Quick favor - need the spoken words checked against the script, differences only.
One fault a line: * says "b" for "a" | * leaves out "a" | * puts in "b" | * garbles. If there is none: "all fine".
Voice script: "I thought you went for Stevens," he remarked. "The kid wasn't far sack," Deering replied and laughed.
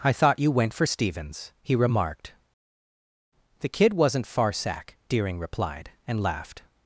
all fine